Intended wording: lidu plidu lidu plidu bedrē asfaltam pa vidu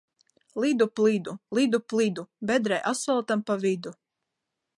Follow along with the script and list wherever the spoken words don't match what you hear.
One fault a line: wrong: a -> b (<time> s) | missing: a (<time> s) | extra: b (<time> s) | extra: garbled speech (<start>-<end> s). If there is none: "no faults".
no faults